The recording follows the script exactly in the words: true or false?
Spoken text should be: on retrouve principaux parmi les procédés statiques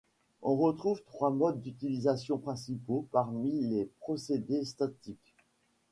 false